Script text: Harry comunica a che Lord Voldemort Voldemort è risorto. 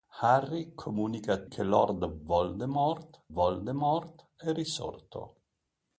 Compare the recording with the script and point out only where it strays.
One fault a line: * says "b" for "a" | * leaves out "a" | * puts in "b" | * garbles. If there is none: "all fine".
all fine